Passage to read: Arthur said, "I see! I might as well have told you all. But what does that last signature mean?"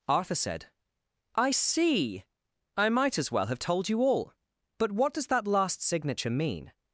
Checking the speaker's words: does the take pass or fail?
pass